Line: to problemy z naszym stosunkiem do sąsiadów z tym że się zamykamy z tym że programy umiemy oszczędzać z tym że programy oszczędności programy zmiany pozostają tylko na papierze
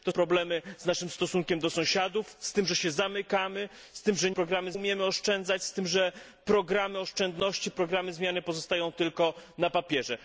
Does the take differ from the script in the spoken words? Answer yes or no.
no